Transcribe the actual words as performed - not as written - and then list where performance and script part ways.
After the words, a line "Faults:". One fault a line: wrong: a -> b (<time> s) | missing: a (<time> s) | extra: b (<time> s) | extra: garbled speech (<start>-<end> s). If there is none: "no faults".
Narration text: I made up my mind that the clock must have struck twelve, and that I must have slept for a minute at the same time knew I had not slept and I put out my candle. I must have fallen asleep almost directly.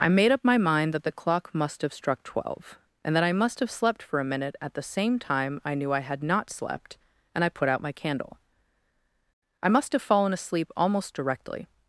I made up my mind that the clock must have struck twelve, and that I must have slept for a minute at the same time I knew I had not slept and I put out my candle. I must have fallen asleep almost directly.
Faults:
extra: I (5.6 s)